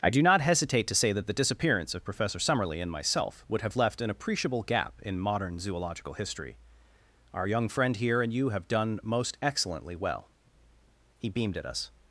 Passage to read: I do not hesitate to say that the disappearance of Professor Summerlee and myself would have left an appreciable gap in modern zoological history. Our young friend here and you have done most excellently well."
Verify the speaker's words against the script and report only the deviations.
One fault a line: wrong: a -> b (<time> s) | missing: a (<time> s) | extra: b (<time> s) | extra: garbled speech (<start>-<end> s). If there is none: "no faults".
extra: He beamed at us (11.2 s)